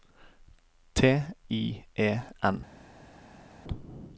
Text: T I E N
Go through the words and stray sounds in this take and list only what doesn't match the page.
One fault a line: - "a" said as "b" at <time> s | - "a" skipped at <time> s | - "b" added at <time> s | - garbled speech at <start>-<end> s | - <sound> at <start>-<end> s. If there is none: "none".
none